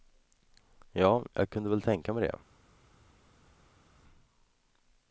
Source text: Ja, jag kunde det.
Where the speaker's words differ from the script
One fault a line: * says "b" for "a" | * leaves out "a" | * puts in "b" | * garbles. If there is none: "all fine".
* puts in "väl tänka mig"